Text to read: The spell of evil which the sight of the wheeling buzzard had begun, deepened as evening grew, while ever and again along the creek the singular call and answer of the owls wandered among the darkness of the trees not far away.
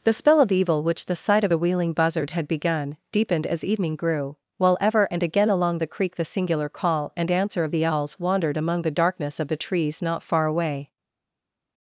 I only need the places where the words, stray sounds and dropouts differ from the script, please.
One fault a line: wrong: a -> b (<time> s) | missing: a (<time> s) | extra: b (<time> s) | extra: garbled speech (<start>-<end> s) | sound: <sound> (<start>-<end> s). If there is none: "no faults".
wrong: the -> a (1.5 s)